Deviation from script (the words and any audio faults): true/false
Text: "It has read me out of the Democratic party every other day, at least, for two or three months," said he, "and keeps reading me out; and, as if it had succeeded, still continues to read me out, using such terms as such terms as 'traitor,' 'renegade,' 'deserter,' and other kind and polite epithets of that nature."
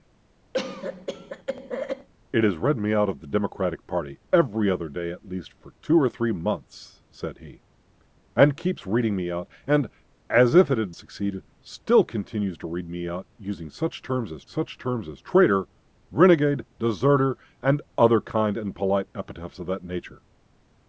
true